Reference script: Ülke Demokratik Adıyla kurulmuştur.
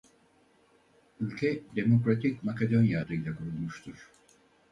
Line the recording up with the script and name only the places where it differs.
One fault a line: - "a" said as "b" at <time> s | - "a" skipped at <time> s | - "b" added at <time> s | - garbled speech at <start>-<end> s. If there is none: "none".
- "Makedonya" added at 2.4 s